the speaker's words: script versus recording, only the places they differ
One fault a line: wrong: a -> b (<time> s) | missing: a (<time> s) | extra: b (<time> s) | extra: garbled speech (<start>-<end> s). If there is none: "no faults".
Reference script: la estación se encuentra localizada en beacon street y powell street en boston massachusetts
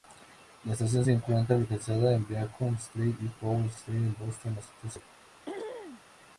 no faults